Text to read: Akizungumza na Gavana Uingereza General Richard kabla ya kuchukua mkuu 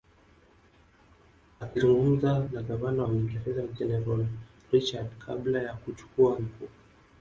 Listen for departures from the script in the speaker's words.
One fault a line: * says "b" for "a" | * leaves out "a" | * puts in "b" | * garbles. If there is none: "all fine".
all fine